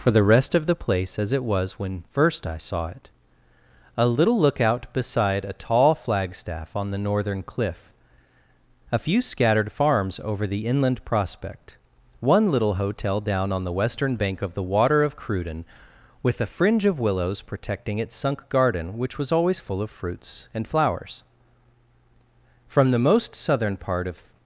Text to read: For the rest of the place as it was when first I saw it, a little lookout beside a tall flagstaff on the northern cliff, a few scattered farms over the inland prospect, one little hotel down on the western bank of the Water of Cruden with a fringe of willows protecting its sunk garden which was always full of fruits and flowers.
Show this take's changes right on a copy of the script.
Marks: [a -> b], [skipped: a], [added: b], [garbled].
For the rest of the place as it was when first I saw it, a little lookout beside a tall flagstaff on the northern cliff, a few scattered farms over the inland prospect, one little hotel down on the western bank of the Water of Cruden with a fringe of willows protecting its sunk garden which was always full of fruits and flowers. [added: From the most southern part of]